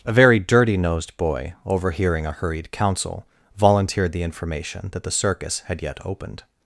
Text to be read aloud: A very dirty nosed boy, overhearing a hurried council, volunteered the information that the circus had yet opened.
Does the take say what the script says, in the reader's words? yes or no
yes